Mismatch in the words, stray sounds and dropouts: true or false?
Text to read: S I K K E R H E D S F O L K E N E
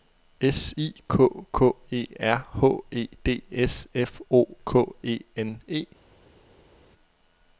true